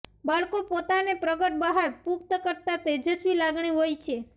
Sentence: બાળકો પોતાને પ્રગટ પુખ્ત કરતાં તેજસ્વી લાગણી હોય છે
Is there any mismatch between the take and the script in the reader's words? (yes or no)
yes